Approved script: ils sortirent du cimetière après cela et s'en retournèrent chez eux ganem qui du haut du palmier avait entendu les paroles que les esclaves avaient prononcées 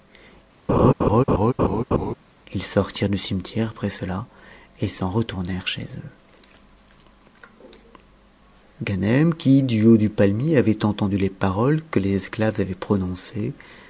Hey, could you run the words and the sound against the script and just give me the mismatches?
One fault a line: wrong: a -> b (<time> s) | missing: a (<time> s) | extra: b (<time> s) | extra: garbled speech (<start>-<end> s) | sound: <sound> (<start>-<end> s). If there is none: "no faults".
sound: laugh (0.7-2.1 s)